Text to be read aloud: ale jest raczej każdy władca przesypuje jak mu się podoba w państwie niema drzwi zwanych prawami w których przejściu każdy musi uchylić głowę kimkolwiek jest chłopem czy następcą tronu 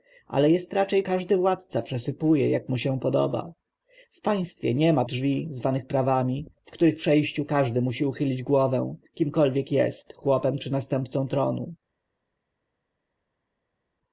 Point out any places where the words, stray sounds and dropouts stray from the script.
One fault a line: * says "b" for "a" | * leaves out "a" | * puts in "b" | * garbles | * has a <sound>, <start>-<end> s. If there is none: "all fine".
all fine